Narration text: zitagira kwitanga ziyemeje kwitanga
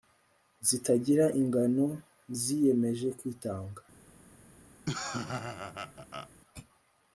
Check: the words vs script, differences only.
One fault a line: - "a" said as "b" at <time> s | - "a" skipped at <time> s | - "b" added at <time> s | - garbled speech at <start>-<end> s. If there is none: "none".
- "kwitanga" said as "ingano" at 1.4 s